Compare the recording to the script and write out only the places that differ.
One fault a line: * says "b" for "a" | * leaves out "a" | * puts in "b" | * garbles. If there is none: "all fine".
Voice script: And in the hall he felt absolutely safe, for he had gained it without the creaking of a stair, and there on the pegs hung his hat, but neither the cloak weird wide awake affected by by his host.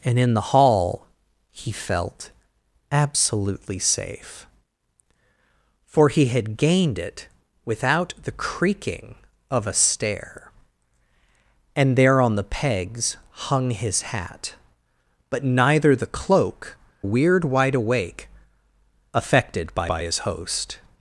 all fine